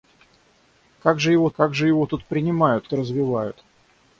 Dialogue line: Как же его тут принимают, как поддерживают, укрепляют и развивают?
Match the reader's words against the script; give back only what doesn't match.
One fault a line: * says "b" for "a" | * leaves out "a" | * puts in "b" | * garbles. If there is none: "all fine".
* says "как же его тут принимают" for "тут принимают как поддерживают укрепляют"